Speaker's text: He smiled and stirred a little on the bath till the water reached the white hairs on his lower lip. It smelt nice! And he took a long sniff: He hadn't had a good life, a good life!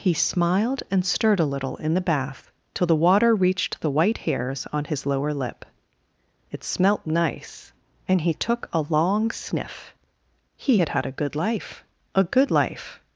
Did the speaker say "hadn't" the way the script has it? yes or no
no